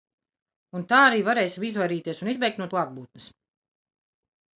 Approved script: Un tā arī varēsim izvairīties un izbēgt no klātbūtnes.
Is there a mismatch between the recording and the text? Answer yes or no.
no